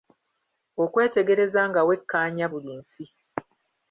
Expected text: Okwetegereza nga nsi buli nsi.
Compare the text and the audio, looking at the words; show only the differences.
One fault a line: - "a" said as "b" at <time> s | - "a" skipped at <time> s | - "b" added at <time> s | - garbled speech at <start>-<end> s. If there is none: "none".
- "nsi" said as "wekkaanya" at 1.9 s